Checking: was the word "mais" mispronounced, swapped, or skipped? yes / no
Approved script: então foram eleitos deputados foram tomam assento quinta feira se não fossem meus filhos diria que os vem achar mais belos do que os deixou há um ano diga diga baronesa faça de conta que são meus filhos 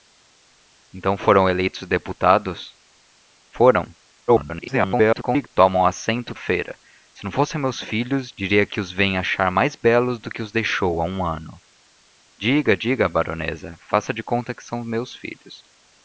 no